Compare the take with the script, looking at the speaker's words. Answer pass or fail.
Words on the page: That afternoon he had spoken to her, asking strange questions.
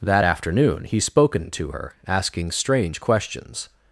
fail